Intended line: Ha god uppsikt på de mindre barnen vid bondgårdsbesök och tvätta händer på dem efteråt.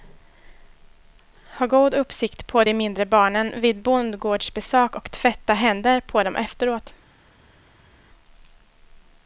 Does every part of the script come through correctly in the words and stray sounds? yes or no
yes